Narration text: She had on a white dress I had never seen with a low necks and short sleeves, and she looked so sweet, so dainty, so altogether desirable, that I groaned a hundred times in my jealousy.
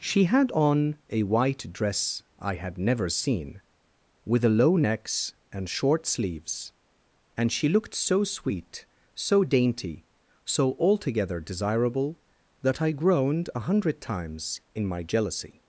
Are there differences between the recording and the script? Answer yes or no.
no